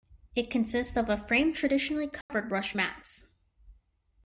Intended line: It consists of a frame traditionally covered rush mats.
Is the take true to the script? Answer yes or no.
yes